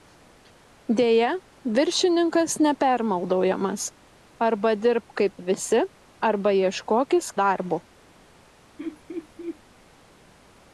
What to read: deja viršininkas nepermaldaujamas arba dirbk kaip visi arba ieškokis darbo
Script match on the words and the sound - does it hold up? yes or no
no